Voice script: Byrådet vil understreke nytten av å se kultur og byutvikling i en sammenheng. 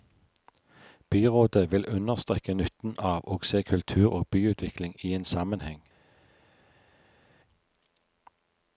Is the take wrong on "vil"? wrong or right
right